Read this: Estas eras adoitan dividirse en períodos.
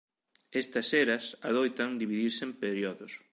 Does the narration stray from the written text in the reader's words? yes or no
no